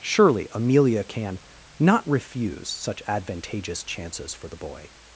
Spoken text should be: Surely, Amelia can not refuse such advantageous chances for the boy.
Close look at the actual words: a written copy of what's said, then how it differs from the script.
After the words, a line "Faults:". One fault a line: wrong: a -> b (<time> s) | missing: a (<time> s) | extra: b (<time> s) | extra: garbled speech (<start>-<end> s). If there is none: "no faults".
Surely, Amelia can not refuse such advantageous chances for the boy.
Faults:
no faults